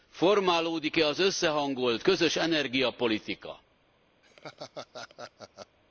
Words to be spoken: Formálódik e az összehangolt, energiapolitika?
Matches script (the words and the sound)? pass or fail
fail